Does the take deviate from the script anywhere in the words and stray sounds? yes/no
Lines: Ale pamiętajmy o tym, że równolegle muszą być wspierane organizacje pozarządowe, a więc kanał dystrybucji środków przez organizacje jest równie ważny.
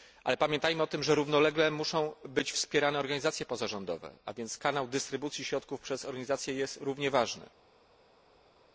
no